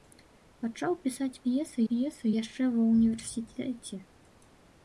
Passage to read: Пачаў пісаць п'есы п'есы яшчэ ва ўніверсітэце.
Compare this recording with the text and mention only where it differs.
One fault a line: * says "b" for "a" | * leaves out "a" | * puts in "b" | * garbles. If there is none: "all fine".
all fine